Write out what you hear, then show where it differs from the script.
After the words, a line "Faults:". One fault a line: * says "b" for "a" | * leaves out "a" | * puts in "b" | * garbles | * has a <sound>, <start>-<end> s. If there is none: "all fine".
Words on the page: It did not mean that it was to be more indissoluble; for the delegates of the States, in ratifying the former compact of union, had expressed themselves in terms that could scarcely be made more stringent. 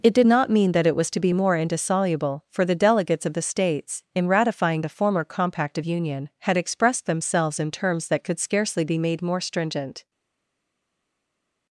It did not mean that it was to be more indissoluble; for the delegates of the States, in ratifying the former compact of union, had expressed themselves in terms that could scarcely be made more stringent.
Faults:
all fine